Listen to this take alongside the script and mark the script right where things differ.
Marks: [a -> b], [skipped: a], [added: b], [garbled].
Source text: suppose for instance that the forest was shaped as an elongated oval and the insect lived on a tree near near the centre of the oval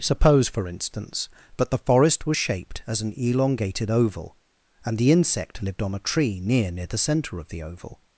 suppose for instance that the forest was shaped as an elongated oval and the insect lived on a tree near near the centre of the oval